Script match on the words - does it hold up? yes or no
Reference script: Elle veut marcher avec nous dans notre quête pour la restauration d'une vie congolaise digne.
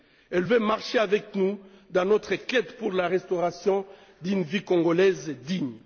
yes